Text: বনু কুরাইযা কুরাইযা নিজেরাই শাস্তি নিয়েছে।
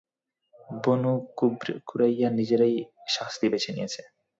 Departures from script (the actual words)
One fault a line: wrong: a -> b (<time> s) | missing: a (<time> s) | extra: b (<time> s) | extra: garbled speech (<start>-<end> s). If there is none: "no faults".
missing: কুরাইযা (2.3 s)
extra: বেছে (3.5 s)